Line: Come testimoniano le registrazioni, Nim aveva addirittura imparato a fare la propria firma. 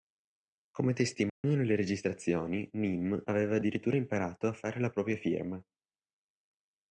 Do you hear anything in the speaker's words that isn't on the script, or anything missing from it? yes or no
no